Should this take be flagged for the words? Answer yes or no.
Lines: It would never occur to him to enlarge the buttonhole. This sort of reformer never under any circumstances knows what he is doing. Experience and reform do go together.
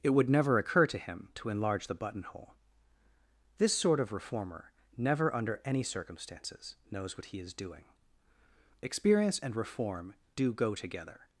no